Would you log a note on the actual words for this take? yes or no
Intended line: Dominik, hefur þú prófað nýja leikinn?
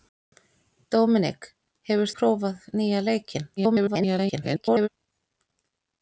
yes